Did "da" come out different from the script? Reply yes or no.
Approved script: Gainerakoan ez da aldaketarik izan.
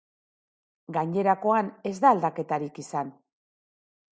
no